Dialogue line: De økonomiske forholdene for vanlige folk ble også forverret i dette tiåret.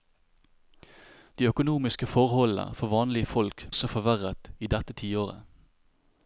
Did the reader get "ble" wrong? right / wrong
wrong